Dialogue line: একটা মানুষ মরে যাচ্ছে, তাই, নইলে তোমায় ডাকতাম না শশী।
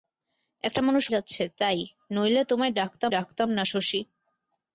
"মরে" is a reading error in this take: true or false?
true